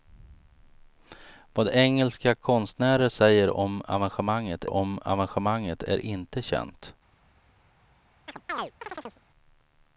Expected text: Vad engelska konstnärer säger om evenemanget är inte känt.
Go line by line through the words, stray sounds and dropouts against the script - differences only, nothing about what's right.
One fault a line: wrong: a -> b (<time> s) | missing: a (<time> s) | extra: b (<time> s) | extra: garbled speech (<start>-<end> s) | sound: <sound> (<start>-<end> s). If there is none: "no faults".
extra: om evenemanget (4.7 s)
sound: chirp (8.3-9.2 s)